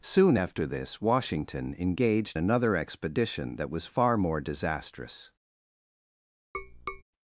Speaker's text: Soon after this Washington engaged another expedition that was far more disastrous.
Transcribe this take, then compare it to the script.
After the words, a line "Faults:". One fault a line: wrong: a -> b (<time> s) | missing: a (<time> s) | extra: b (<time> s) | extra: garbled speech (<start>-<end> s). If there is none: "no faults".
Soon after this Washington engaged another expedition that was far more disastrous.
Faults:
no faults